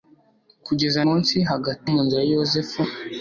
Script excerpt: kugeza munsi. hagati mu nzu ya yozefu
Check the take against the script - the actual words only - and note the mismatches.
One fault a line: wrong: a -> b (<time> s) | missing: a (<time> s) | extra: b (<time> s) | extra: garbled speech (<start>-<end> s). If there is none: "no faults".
no faults